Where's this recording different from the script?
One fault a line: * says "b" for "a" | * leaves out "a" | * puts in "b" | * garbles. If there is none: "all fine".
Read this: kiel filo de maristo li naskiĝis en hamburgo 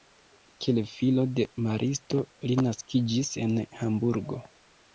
all fine